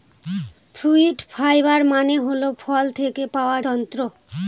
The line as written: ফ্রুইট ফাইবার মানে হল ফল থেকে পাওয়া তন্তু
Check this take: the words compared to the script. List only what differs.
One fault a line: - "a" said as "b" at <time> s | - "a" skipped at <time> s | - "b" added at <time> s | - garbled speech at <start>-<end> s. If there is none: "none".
none